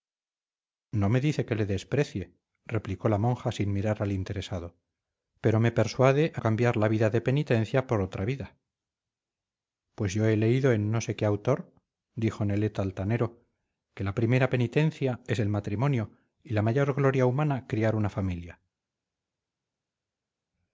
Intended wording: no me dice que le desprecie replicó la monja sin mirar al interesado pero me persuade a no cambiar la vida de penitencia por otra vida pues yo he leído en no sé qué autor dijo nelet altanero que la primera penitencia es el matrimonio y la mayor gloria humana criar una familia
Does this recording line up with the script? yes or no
no